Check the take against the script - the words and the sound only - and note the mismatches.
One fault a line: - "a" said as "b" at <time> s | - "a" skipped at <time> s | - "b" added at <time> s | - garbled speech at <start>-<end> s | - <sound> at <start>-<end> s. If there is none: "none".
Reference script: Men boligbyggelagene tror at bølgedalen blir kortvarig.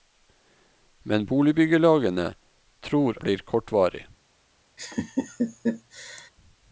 - "at bølgedalen" skipped at 3.2 s
- laugh at 4.8-6.3 s